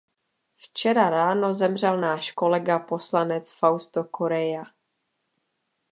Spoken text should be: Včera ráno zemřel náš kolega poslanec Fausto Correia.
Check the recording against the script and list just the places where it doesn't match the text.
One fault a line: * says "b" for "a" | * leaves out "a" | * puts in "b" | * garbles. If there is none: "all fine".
all fine